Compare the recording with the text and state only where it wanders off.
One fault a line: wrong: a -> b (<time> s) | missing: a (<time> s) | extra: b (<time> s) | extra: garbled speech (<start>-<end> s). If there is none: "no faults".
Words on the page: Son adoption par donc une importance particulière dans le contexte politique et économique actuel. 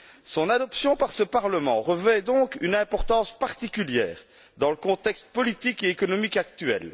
extra: ce Parlement revêt (1.1 s)